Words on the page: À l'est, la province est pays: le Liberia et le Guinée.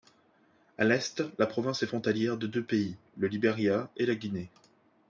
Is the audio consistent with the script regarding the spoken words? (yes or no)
no